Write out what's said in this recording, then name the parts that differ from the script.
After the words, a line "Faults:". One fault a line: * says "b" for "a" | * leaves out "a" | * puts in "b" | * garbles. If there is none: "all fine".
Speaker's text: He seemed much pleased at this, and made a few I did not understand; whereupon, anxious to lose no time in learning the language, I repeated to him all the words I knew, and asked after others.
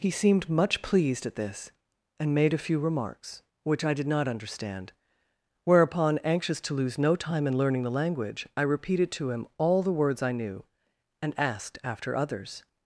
He seemed much pleased at this, and made a few remarks, which I did not understand; whereupon, anxious to lose no time in learning the language, I repeated to him all the words I knew, and asked after others.
Faults:
* puts in "remarks which"